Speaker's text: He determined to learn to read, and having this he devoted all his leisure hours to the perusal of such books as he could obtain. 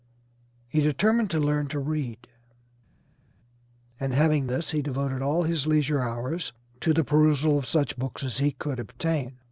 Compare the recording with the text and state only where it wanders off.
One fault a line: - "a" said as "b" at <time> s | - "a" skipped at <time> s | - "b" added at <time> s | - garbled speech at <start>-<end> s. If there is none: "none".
none